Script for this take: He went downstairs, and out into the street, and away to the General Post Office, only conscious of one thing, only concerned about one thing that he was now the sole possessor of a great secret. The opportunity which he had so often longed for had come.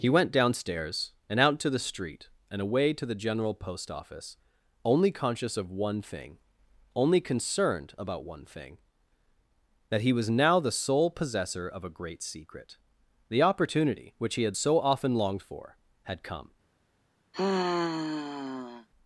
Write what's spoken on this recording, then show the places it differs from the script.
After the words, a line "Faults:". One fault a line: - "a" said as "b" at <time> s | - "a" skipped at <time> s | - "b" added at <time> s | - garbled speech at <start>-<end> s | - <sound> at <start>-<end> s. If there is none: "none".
He went downstairs, and out to the street, and away to the General Post Office, only conscious of one thing, only concerned about one thing that he was now the sole possessor of a great secret. The opportunity which he had so often longed for had come.
Faults:
- "into" said as "to" at 1.6 s
- sigh at 17.3-18.9 s